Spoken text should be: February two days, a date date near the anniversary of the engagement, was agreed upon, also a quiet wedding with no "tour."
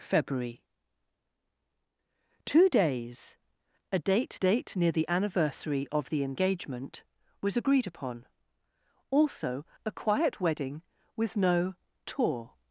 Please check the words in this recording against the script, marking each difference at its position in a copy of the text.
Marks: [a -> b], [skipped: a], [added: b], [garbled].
February two days, a date date near the anniversary of the engagement, was agreed upon, also a quiet wedding with no "tour."